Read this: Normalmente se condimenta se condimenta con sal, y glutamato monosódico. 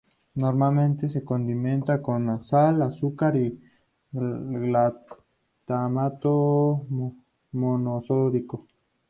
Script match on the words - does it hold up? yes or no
no